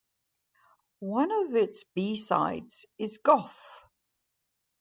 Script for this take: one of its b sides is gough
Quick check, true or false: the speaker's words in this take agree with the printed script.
true